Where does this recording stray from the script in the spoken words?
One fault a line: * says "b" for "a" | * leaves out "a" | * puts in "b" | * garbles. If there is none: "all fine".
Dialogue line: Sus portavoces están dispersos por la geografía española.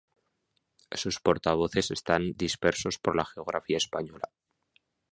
all fine